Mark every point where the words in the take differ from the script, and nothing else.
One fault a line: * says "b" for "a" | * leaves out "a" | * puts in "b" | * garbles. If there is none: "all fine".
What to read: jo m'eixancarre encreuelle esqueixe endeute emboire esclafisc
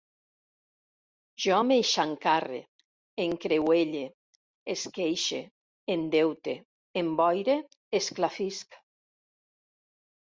all fine